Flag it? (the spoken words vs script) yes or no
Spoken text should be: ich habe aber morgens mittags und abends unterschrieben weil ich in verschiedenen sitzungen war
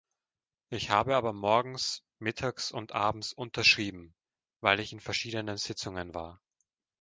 no